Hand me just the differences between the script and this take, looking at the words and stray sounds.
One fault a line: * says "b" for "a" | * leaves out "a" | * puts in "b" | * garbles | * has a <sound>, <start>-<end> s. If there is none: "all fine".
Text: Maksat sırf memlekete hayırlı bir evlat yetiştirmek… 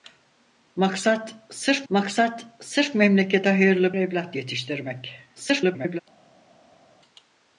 * puts in "maksat sırf"
* leaves out "bir"
* garbles